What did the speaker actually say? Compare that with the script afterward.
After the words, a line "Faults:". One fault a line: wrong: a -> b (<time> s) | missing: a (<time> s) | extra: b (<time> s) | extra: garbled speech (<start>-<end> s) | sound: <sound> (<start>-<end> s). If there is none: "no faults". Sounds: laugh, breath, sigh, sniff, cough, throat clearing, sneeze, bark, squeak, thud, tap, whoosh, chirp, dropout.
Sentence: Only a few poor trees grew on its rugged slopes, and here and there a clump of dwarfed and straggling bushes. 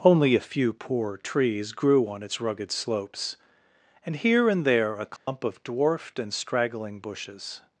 Only a few poor trees grew on its rugged slopes, and here and there a clump of dwarfed and straggling bushes.
Faults:
sound: dropout (5.2-5.3 s)